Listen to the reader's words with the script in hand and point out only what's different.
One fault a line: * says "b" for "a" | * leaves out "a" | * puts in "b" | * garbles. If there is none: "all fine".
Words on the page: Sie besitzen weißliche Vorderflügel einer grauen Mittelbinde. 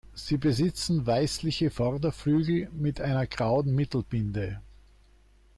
* puts in "mit"